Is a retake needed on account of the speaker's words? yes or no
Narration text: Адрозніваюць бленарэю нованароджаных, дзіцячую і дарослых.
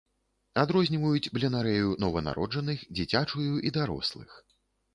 no